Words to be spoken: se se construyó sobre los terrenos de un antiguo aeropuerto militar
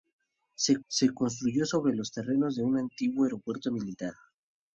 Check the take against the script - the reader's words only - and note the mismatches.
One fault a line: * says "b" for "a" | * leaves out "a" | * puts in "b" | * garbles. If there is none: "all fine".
all fine